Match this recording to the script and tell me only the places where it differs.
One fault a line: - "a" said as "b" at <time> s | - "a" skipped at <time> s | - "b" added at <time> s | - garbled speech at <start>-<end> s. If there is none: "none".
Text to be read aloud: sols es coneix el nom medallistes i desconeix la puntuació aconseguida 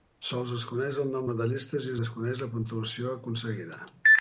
none